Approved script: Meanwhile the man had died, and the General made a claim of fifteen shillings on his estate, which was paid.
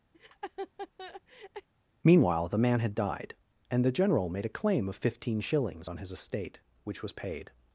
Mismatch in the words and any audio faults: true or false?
true